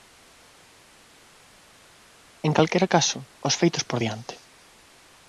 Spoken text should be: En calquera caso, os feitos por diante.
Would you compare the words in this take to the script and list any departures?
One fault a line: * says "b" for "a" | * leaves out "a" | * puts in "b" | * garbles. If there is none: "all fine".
all fine